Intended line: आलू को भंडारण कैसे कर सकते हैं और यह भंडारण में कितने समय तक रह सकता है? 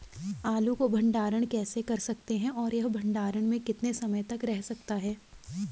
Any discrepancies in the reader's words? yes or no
no